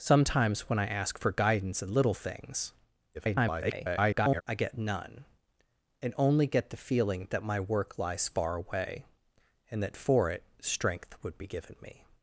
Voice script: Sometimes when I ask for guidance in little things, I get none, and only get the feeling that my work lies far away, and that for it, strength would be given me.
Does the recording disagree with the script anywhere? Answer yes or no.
yes